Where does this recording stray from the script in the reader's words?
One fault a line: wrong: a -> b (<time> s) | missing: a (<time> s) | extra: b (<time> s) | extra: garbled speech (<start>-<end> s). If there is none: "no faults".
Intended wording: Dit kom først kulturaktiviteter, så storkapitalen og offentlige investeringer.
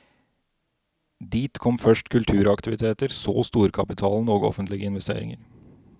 no faults